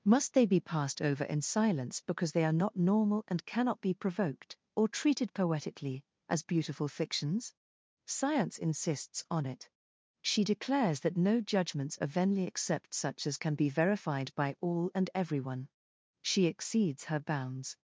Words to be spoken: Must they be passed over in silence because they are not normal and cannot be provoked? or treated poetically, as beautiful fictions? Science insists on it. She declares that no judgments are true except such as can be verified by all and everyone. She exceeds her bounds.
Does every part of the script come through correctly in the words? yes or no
no